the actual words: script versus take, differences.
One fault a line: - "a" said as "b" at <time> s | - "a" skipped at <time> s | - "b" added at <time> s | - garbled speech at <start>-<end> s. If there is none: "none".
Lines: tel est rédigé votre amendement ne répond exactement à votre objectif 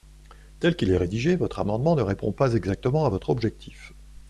- "qu'il" added at 0.8 s
- "pas" added at 2.3 s